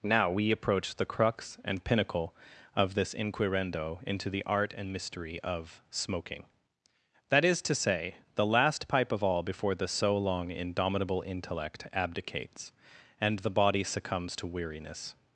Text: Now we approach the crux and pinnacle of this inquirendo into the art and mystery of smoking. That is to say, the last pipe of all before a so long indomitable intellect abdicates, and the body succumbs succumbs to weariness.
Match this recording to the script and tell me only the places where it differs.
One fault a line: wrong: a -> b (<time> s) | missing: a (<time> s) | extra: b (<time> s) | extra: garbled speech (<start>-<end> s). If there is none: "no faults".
wrong: a -> the (9.8 s)
missing: succumbs (14.3 s)